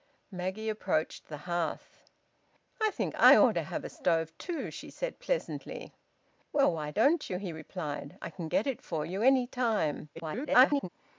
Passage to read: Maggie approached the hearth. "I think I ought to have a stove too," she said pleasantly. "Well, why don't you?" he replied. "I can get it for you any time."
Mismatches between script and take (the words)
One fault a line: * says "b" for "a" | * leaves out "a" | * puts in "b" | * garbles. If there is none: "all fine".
* garbles